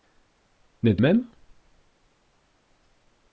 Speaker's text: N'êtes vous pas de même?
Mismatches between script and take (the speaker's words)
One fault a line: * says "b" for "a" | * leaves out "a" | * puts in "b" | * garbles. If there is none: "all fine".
* leaves out "vous pas de"